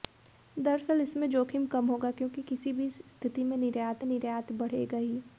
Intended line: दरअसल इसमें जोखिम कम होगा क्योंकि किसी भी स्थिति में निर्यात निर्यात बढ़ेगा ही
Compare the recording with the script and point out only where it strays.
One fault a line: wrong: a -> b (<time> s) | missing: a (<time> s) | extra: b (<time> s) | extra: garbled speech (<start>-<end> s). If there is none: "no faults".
no faults